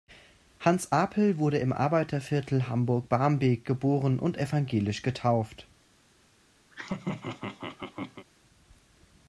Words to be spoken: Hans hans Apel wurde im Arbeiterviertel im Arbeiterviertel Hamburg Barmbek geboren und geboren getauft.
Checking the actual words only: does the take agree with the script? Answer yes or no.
no